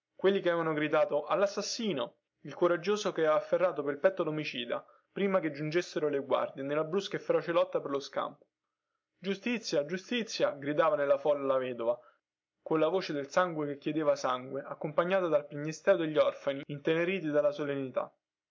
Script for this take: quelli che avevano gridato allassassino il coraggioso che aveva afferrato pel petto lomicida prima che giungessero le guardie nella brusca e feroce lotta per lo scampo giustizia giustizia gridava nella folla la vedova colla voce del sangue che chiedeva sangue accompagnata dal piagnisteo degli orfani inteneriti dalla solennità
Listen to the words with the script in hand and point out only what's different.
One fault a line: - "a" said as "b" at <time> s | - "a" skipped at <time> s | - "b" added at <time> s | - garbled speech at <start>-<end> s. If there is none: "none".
none